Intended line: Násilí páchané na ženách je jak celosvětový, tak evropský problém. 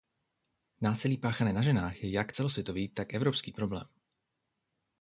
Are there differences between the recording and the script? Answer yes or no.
no